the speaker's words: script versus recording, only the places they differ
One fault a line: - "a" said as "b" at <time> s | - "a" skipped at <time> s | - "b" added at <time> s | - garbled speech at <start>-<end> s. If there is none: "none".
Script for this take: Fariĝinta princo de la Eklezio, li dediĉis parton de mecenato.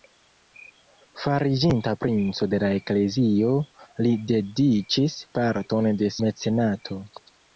none